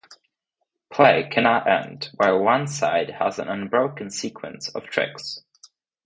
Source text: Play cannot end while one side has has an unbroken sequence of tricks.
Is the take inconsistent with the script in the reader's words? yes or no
yes